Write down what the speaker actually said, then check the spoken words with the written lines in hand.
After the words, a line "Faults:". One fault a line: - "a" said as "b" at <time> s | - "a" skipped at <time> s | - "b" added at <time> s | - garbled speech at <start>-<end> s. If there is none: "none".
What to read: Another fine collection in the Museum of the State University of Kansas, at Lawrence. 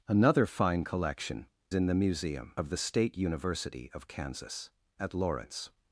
Another fine collection in the Museum of the State University of Kansas, at Lawrence.
Faults:
none